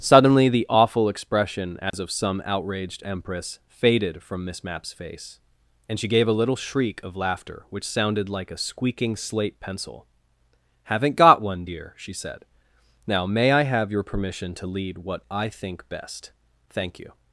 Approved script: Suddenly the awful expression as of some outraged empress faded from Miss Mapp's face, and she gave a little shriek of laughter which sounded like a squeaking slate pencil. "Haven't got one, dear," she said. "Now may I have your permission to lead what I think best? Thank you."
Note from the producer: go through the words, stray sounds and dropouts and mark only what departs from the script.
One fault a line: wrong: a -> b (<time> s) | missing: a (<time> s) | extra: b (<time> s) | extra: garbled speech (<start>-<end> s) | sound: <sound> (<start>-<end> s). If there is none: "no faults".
sound: dropout (1.9-1.9 s)